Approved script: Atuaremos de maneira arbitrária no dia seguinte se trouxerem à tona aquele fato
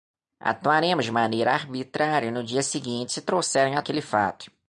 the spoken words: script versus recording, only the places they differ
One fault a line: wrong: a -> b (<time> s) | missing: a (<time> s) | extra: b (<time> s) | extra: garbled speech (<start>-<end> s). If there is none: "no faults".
missing: tona (3.8 s)